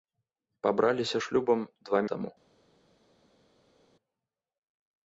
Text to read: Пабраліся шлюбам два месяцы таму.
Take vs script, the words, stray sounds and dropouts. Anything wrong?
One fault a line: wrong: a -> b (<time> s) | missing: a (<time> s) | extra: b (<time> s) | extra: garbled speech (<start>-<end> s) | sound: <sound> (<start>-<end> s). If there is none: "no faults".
missing: месяцы (2.0 s)